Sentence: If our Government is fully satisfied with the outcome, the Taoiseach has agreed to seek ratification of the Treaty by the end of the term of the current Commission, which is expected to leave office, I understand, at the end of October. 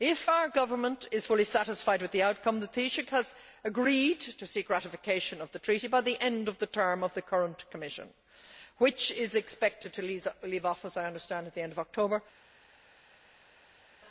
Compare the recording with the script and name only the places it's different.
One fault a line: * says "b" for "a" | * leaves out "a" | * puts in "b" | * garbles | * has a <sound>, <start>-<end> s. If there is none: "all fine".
all fine